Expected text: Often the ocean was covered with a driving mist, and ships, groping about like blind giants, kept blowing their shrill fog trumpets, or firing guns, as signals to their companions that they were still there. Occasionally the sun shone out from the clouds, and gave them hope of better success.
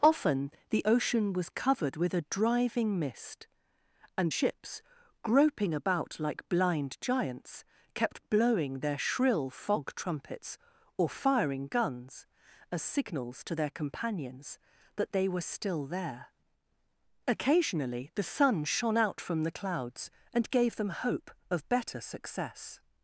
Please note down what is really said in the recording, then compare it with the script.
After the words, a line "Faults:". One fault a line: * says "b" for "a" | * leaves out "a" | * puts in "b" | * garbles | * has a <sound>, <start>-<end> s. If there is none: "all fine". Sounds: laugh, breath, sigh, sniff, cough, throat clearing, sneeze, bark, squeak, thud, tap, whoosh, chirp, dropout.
Often the ocean was covered with a driving mist, and ships, groping about like blind giants, kept blowing their shrill fog trumpets, or firing guns, as signals to their companions that they were still there. Occasionally the sun shone out from the clouds, and gave them hope of better success.
Faults:
all fine